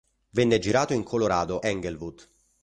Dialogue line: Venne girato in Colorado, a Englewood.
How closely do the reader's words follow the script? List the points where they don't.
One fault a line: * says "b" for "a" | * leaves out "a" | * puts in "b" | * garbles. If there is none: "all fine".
* leaves out "a"